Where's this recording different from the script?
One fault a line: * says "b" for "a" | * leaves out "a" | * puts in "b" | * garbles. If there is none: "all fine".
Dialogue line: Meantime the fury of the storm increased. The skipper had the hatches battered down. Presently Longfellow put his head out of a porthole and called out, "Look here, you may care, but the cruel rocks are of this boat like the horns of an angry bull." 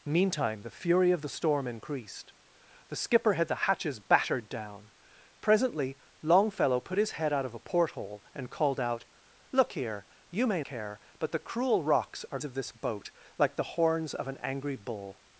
all fine